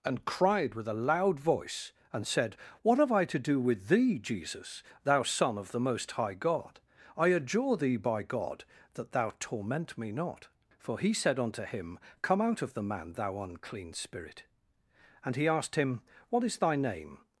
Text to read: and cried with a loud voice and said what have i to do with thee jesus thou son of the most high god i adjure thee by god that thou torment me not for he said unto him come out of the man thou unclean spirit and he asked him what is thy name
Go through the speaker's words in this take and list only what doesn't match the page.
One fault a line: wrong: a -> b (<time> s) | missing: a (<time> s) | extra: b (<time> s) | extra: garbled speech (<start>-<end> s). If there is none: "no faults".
no faults